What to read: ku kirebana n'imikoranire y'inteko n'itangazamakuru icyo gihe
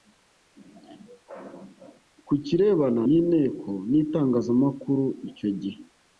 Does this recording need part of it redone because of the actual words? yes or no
yes